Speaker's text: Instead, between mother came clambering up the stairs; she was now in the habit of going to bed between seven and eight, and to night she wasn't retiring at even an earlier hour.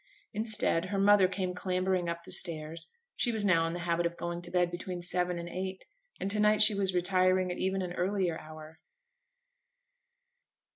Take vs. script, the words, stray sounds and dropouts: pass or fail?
fail